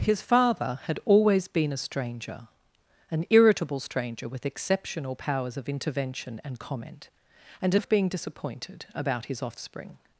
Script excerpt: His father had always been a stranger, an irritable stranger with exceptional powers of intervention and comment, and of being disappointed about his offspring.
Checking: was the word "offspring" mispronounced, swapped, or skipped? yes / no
no